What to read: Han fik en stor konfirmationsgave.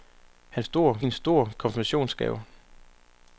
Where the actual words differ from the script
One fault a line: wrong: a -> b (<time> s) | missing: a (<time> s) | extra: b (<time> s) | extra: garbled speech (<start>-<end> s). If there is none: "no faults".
wrong: fik -> stor (0.6 s)